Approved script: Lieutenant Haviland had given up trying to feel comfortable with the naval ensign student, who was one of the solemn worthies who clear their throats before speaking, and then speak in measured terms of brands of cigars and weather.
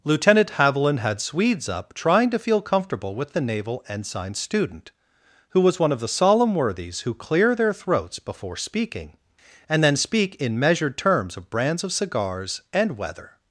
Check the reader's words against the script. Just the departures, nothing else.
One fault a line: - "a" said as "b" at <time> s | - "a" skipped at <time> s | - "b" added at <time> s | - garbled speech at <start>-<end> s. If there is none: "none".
- "given" said as "swedes" at 1.2 s